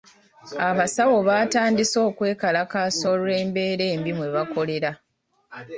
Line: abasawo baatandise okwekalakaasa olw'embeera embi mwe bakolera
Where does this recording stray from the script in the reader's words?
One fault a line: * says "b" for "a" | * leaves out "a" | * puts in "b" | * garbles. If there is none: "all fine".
all fine